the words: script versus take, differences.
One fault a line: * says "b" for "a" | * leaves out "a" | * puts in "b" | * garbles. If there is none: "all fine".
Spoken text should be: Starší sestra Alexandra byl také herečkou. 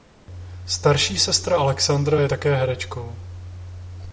* says "je" for "byl"